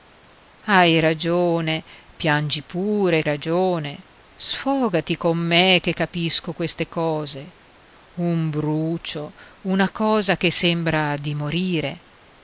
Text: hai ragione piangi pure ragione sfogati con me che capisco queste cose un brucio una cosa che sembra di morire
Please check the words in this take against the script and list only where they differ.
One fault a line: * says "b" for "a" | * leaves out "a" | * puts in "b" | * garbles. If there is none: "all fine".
all fine